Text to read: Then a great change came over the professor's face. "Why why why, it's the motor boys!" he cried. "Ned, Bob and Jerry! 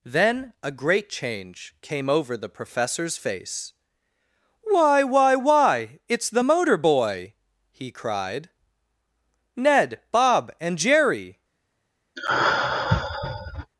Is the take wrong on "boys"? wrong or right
wrong